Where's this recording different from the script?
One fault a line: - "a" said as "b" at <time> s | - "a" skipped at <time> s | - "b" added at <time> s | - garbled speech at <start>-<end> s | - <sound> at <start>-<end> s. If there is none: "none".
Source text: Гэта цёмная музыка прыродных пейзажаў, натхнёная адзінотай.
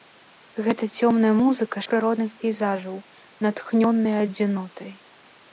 none